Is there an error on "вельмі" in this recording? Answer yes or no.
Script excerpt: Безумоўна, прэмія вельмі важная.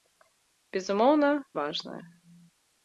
yes